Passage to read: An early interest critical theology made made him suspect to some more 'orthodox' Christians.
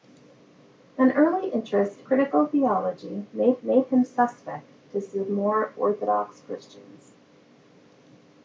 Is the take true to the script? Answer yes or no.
yes